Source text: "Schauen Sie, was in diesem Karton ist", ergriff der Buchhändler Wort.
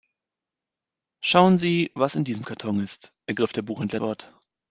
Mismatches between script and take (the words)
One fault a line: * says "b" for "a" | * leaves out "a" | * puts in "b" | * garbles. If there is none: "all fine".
all fine